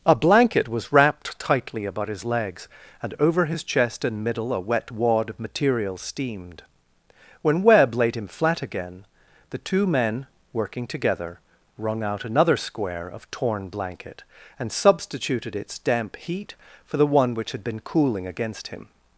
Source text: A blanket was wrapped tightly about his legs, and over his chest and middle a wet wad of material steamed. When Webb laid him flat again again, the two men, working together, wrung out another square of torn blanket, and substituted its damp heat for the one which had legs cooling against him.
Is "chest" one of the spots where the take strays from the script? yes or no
no